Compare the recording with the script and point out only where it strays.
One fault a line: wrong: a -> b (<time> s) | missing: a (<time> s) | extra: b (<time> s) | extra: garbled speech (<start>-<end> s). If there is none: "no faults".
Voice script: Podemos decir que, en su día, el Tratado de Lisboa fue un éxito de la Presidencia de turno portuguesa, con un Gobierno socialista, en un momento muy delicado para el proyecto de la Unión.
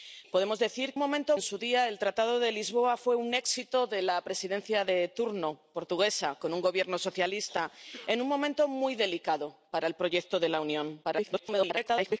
wrong: que -> momento (1.0 s)
extra: garbled speech (11.0-12.2 s)